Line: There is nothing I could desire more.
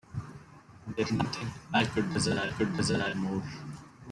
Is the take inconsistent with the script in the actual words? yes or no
yes